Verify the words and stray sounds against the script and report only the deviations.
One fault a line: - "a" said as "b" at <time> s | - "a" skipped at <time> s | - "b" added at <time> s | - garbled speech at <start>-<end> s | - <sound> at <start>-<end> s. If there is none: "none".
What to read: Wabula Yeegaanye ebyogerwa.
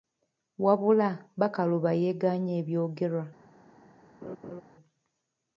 - "Bakaluba" added at 1.4 s
- laugh at 4.2-4.6 s